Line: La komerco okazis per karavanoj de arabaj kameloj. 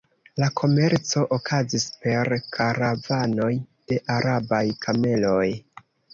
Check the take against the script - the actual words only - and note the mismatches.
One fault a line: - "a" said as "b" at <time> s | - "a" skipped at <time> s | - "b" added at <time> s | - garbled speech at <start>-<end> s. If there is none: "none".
none